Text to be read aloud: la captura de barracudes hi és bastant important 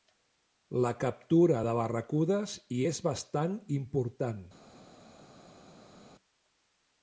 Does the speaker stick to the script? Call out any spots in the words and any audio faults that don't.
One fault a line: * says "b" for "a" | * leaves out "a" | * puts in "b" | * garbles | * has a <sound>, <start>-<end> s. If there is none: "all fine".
all fine